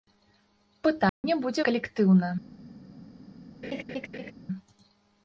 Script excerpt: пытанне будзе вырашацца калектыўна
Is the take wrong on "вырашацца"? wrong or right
wrong